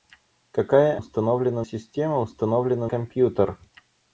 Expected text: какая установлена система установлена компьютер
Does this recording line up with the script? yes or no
yes